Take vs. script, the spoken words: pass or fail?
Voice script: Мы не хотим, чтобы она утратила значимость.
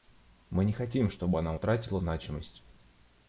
pass